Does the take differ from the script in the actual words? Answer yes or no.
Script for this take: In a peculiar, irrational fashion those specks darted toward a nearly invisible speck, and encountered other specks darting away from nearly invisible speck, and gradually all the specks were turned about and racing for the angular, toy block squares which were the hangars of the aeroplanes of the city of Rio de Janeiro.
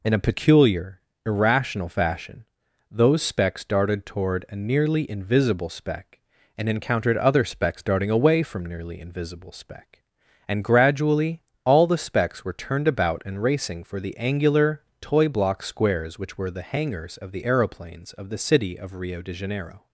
no